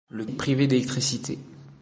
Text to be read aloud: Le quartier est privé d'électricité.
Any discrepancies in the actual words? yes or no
yes